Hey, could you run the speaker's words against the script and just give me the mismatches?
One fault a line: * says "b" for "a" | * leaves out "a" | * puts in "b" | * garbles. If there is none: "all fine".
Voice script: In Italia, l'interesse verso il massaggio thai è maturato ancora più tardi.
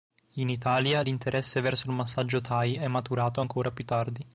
all fine